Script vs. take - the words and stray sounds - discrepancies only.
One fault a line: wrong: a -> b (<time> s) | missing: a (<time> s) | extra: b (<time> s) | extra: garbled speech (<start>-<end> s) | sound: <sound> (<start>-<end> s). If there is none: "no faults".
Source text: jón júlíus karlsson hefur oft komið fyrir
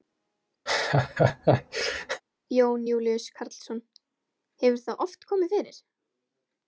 sound: laugh (0.7-2.2 s)
extra: það (4.9 s)